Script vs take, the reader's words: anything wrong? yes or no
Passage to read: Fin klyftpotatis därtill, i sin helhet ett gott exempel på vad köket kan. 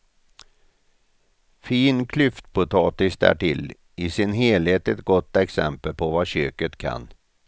no